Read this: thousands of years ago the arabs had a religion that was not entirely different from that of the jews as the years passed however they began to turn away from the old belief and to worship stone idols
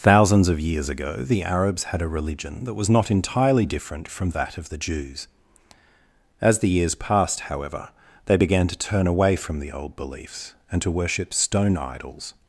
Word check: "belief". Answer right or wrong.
wrong